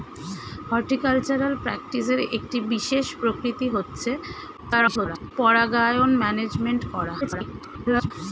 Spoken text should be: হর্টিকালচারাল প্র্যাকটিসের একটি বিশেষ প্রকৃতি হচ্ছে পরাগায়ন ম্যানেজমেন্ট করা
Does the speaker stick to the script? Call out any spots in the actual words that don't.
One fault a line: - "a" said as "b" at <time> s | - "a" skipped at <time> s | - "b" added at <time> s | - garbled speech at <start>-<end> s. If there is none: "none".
- garbled speech at 4.6-5.3 s
- garbled speech at 7.2-8.1 s